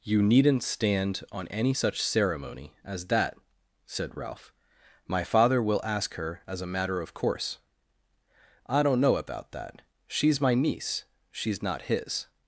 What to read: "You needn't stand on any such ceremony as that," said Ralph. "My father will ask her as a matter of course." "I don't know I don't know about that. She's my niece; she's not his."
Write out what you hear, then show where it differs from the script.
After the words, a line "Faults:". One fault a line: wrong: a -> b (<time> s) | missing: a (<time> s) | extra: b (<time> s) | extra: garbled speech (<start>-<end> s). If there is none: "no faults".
"You needn't stand on any such ceremony as that," said Ralph. "My father will ask her as a matter of course." "I don't know about that. She's my niece; she's not his."
Faults:
missing: I don't know (9.2 s)